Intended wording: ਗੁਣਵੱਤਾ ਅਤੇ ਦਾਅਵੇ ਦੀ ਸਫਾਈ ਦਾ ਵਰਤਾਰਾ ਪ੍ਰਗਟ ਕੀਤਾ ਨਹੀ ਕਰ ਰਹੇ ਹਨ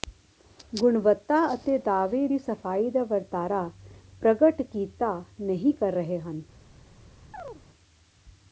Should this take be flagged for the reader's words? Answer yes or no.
no